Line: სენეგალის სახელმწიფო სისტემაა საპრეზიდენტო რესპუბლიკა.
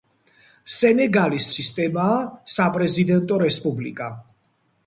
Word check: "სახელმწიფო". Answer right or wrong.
wrong